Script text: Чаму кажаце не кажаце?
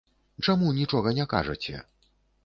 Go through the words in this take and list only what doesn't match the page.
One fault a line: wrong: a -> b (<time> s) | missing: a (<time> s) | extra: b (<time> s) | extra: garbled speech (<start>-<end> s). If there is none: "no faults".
wrong: кажаце -> нічога (0.8 s)